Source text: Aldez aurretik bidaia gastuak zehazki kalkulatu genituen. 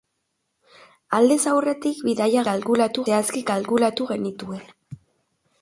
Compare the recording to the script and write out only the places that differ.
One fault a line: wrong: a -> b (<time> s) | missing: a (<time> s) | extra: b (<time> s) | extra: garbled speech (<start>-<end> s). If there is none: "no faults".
wrong: gastuak -> kalkulatu (2.5 s)